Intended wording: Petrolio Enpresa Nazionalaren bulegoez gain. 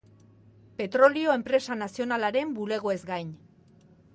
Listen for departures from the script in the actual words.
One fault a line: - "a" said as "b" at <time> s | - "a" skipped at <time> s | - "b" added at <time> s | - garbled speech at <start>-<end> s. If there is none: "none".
none